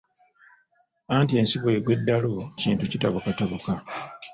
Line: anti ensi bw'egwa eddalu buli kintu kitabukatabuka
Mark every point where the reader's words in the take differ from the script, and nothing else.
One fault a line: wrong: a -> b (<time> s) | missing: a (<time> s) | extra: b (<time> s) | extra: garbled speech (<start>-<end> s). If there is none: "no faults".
missing: buli (2.3 s)